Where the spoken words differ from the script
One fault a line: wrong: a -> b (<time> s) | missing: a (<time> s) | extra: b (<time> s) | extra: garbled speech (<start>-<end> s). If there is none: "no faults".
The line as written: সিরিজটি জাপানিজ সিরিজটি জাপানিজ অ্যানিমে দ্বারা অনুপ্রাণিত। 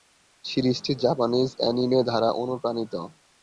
missing: সিরিজটি জাপানিজ (1.5 s)